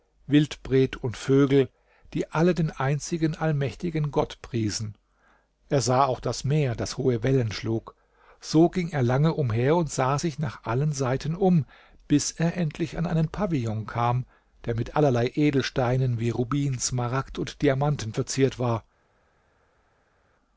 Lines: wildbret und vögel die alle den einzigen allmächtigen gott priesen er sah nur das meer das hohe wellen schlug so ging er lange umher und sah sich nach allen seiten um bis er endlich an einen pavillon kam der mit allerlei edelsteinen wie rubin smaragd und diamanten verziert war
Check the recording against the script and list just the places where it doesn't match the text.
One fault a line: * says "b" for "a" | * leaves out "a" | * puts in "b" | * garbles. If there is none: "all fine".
* says "auch" for "nur"